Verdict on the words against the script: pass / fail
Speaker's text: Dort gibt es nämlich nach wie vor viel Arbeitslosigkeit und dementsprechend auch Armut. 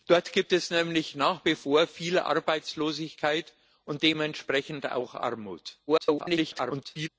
fail